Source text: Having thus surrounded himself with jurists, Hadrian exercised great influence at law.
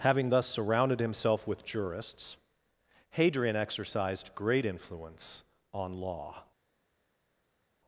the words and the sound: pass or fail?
fail